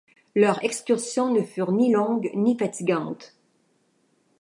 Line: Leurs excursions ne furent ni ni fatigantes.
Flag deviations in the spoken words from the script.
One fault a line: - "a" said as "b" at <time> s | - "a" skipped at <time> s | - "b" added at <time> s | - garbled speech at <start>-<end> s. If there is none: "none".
- "longues" added at 1.9 s